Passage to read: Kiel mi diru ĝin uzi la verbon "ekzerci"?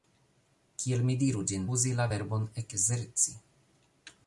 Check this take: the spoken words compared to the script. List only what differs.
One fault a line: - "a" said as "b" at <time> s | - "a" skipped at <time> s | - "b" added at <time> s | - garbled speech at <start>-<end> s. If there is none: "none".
none